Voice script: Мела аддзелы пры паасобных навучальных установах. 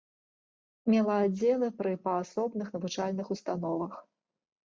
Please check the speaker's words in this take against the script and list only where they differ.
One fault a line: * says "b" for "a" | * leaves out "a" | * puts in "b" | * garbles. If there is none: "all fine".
all fine